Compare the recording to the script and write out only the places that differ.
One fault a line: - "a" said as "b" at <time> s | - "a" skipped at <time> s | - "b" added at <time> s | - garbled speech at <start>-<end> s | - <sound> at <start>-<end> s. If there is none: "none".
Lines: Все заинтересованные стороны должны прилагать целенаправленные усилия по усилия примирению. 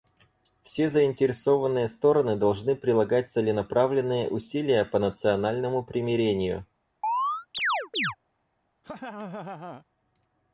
- "усилия" said as "национальному" at 5.0 s
- chirp at 7.0-8.2 s
- laugh at 8.8-9.8 s